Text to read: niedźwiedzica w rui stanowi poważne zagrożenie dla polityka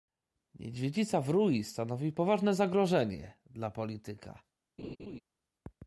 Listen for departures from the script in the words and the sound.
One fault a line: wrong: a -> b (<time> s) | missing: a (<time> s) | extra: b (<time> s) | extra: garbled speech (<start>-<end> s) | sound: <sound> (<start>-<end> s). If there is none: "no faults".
sound: laugh (4.8-5.2 s)